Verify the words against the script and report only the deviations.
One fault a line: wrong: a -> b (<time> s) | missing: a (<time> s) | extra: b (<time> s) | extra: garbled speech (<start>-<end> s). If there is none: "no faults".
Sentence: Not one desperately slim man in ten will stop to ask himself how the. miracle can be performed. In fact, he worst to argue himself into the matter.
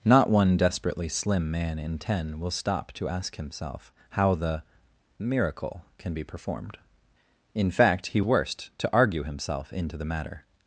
no faults